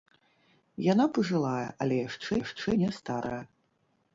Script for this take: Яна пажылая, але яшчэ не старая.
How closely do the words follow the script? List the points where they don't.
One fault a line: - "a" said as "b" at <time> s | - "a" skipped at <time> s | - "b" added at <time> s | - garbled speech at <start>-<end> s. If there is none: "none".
- "яшчэ" added at 2.4 s